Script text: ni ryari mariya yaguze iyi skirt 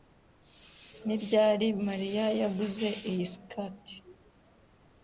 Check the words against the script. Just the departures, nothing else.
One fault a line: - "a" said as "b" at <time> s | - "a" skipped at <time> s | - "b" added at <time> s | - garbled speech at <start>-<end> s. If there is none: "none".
none